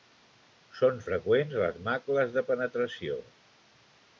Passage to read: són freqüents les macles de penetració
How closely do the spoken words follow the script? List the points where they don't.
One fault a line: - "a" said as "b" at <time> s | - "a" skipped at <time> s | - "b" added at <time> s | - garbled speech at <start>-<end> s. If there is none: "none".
none